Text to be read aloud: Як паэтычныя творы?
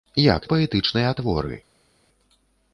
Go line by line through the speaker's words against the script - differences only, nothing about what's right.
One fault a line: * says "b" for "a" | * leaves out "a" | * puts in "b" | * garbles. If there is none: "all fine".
all fine